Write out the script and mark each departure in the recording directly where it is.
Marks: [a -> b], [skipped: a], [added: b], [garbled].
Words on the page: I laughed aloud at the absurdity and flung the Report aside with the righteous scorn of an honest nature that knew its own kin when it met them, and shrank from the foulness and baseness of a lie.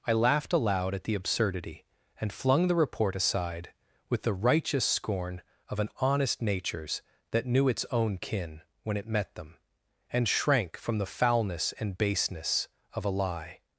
I laughed aloud at the absurdity and flung the Report aside with the righteous scorn of an honest [nature -> natures] that knew its own kin when it met them, and shrank from the foulness and baseness of a lie.